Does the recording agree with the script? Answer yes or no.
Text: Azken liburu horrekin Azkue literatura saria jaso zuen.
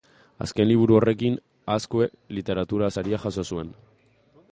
yes